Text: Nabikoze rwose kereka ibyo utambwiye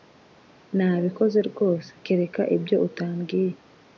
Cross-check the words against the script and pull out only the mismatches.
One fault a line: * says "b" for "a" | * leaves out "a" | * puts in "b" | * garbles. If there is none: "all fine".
all fine